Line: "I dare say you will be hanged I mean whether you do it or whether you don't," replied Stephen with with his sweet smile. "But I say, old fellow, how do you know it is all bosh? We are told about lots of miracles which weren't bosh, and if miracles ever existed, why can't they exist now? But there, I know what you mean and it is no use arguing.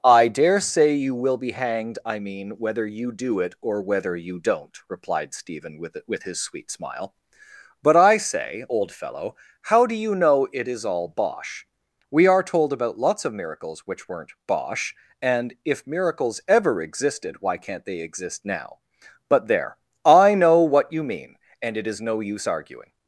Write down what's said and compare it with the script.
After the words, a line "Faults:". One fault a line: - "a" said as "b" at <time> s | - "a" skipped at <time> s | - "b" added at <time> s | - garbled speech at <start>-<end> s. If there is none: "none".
"I dare say you will be hanged I mean whether you do it or whether you don't," replied Stephen with with his sweet smile. "But I say, old fellow, how do you know it is all bosh? We are told about lots of miracles which weren't bosh, and if miracles ever existed, why can't they exist now? But there, I know what you mean and it is no use arguing.
Faults:
none